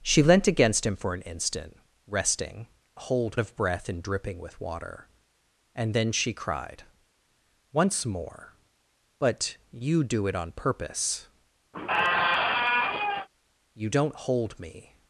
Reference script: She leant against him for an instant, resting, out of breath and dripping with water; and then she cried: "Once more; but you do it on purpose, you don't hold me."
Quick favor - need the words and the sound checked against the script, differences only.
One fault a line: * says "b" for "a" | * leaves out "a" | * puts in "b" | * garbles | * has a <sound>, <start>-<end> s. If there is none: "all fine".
* says "hold" for "out"
* has a squeak, 11.7-13.3 s